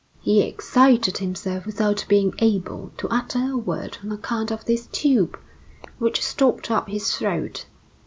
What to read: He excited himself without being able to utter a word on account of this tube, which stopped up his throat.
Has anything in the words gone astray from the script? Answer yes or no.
no